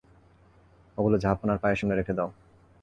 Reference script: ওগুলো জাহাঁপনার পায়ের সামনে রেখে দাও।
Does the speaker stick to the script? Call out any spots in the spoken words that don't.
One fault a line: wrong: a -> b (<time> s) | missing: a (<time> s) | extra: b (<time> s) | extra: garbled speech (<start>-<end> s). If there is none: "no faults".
no faults